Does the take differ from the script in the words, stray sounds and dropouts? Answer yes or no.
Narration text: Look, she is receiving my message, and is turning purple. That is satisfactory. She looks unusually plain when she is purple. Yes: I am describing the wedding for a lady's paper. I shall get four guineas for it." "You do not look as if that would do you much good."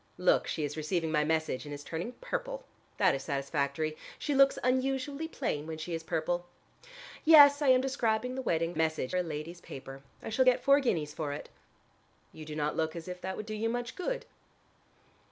yes